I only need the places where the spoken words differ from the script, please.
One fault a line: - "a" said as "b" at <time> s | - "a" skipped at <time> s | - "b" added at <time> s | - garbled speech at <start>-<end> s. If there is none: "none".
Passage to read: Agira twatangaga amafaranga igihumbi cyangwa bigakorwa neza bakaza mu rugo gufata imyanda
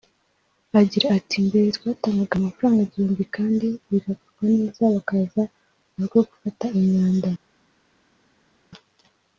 - "ati Mbere" added at 1.2 s
- "cyangwa" said as "kandi" at 3.4 s